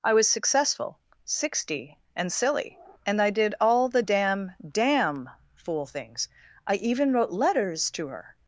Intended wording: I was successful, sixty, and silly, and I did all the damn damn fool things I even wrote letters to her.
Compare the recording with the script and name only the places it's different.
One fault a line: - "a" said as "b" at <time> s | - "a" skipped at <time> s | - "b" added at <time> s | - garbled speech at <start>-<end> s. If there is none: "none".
none